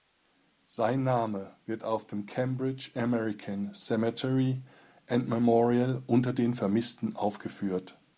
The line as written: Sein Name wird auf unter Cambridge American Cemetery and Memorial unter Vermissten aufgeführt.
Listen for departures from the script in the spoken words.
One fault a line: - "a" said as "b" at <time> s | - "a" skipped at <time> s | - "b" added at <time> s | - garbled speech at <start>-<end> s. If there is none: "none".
- "unter" said as "dem" at 2.1 s
- "den" added at 6.3 s